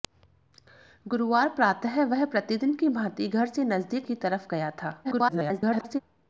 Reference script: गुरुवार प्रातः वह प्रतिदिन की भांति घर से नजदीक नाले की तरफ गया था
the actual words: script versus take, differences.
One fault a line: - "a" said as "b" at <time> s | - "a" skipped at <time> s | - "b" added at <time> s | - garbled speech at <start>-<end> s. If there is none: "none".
- "नाले" skipped at 4.1 s
- garbled speech at 5.0-6.0 s